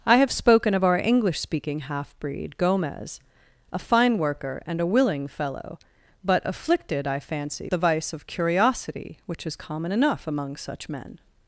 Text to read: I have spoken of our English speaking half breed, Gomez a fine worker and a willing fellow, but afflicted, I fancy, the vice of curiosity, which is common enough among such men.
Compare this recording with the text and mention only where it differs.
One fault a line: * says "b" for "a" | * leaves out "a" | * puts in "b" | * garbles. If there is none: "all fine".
all fine